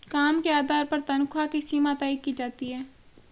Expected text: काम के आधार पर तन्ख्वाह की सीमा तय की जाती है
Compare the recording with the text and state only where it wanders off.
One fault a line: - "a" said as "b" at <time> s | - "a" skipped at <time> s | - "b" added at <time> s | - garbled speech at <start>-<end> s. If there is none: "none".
none